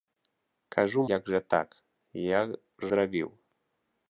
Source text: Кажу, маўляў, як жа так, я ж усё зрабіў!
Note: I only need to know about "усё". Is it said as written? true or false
false